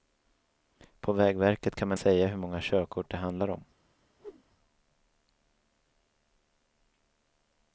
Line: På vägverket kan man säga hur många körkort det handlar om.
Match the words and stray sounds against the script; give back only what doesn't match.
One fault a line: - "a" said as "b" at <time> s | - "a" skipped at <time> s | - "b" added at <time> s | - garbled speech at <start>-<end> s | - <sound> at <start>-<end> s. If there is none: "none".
- whoosh at 4.2-4.4 s